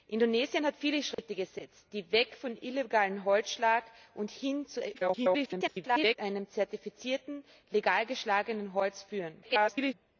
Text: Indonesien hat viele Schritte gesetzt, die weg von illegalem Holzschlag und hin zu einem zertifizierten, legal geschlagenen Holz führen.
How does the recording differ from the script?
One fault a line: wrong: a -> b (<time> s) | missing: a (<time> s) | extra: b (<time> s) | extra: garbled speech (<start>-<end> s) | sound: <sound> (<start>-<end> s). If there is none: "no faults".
sound: dropout (1.1-1.2 s)
extra: garbled speech (4.9-6.2 s)
extra: garbled speech (9.4-9.9 s)